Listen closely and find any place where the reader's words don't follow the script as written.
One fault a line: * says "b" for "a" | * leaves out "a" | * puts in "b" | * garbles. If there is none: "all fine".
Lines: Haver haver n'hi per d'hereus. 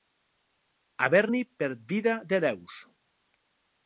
* leaves out "haver"
* puts in "vida"